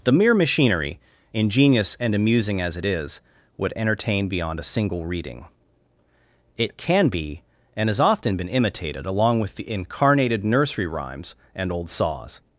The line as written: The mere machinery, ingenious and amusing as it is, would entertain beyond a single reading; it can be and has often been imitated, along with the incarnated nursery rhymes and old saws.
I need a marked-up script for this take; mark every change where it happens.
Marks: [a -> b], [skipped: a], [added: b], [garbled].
The mere machinery, ingenious and amusing as it is, would entertain beyond a single reading; it can be and has often been imitated, along with the incarnated nursery rhymes and old saws.